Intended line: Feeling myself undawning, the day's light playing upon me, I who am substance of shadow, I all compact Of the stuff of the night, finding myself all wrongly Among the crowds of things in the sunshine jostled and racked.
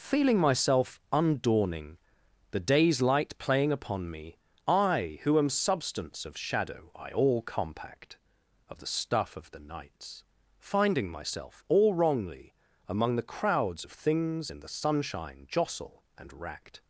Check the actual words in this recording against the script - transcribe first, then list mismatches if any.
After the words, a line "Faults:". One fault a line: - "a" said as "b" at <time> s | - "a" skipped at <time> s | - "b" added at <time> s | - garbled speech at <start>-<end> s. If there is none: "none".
Feeling myself undawning, the day's light playing upon me, I who am substance of shadow, I all compact Of the stuff of the nights, finding myself all wrongly Among the crowds of things in the sunshine jostle and racked.
Faults:
- "night" said as "nights" at 9.6 s
- "jostled" said as "jostle" at 15.5 s